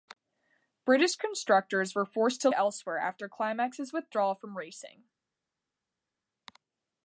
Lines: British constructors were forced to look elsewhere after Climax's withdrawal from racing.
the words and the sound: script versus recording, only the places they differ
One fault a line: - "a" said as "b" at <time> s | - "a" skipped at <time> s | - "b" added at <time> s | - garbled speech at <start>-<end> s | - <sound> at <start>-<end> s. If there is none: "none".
- "look" skipped at 2.5 s